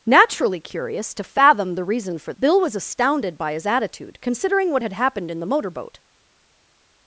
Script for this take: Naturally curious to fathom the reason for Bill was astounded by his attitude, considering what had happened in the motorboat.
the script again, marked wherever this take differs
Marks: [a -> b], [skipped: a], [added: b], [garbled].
Naturally curious to fathom the reason for Bill was astounded by his attitude, considering what had happened in the motorboat.